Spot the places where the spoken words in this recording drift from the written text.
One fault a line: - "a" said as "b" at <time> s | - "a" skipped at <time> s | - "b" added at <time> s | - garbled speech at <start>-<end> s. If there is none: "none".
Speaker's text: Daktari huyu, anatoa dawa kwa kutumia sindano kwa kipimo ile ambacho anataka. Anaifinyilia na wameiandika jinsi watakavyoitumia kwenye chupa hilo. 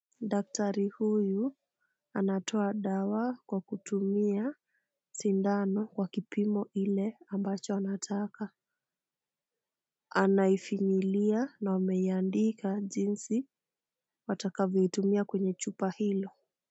none